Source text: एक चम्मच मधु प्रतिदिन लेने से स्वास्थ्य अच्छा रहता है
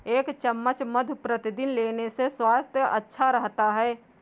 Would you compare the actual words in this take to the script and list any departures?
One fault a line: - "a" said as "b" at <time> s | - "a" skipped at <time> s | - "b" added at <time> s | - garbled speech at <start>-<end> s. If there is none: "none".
none